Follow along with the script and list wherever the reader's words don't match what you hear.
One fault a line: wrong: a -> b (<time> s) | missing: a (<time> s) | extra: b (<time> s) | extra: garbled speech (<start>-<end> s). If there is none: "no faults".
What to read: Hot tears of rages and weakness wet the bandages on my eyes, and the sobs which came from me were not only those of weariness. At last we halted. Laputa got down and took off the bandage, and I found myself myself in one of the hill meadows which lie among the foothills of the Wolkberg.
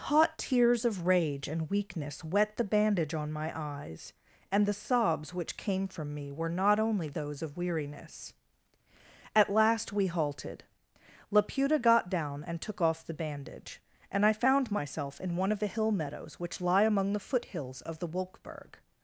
wrong: rages -> rage (1.1 s)
wrong: bandages -> bandage (2.6 s)
missing: myself (15.2 s)